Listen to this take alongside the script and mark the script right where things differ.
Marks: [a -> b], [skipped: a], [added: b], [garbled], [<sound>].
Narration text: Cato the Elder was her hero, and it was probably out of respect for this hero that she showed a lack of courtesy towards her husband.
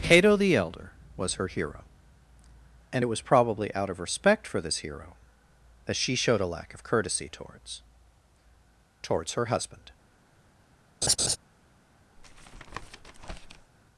Cato the Elder was her hero, and it was probably out of respect for this hero that she showed a lack of courtesy towards [added: towards] her husband. [laugh] [tap]